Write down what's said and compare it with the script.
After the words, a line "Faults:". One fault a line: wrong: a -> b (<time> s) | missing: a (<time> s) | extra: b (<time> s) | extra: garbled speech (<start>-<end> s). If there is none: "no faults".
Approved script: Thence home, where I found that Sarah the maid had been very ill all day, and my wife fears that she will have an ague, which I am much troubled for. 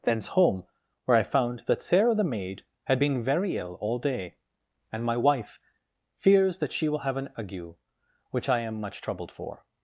Thence home, where I found that Sarah the maid had been very ill all day, and my wife fears that she will have an ague, which I am much troubled for.
Faults:
no faults